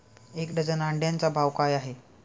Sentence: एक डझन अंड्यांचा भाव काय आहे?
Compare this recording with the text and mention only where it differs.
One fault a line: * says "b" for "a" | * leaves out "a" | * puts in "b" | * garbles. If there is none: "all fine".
all fine